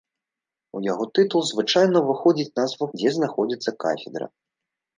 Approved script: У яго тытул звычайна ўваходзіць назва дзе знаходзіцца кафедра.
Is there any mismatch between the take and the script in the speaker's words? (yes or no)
no